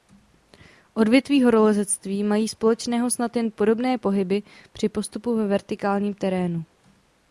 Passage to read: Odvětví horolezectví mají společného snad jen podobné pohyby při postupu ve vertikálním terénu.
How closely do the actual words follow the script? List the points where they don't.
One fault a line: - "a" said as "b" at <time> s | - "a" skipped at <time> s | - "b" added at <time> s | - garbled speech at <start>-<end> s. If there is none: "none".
none